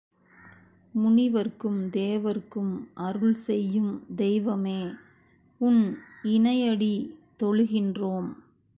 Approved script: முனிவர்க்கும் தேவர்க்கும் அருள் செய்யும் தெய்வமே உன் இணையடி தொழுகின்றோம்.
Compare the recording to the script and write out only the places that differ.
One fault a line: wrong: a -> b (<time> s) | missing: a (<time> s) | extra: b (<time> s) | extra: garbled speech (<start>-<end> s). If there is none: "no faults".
no faults